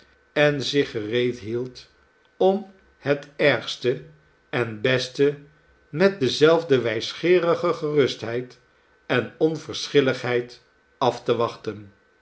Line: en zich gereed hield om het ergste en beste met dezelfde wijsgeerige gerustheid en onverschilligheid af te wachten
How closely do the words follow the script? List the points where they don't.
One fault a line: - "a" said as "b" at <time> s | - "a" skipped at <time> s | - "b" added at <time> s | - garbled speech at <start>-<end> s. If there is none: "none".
none